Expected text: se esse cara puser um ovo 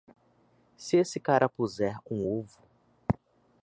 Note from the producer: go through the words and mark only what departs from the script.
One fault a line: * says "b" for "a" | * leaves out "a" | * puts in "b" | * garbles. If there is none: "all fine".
all fine